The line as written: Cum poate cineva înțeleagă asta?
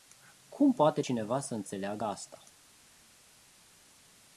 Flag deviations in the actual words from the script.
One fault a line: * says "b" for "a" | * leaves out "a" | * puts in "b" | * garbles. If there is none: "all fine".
* puts in "să"